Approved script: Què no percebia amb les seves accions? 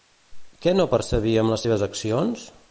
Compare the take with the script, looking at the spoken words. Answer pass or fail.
pass